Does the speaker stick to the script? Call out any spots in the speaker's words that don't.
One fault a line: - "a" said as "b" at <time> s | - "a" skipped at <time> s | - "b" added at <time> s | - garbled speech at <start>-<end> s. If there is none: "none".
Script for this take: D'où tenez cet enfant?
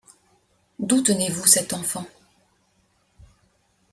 - "vous" added at 1.3 s